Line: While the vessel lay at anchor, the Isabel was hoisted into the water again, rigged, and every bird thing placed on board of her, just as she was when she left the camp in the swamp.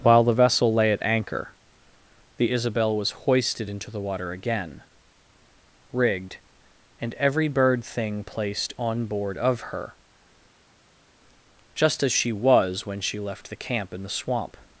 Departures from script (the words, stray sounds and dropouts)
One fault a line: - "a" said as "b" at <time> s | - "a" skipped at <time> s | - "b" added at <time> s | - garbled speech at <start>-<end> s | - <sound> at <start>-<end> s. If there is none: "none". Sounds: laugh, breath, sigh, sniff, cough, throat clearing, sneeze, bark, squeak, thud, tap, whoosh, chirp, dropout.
none